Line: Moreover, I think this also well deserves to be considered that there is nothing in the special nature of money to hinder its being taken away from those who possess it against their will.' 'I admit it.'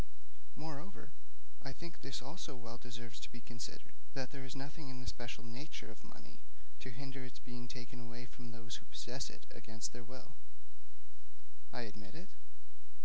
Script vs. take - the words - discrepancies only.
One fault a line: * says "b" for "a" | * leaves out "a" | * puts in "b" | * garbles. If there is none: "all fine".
all fine